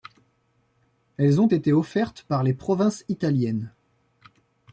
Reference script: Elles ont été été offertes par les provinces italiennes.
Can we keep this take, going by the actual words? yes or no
no